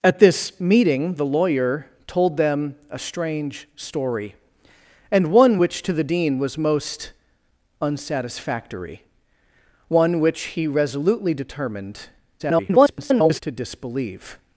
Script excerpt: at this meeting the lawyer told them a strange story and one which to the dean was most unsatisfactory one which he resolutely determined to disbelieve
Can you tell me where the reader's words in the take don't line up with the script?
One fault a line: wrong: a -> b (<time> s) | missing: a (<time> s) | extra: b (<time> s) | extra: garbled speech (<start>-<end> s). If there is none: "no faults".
extra: garbled speech (12.4-13.4 s)